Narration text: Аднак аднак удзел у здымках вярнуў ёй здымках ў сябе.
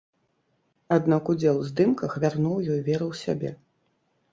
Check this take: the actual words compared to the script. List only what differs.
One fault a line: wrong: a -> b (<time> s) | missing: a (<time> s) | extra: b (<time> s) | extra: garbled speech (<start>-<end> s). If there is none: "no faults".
missing: аднак (1.2 s)
wrong: здымках -> веру (2.9 s)